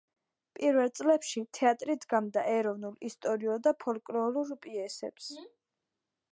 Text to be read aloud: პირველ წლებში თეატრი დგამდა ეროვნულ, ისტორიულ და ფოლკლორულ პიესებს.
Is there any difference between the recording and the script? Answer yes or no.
no